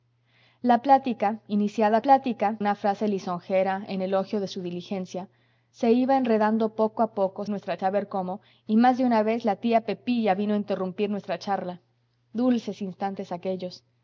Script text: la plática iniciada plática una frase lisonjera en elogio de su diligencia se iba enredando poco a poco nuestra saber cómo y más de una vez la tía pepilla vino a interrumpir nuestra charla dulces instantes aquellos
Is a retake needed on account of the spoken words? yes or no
no